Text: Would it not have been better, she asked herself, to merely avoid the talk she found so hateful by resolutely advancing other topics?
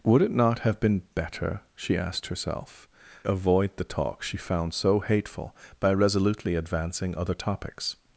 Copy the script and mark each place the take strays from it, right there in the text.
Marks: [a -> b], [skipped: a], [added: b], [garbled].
Would it not have been better, she asked herself, [skipped: to merely] avoid the talk she found so hateful by resolutely advancing other topics?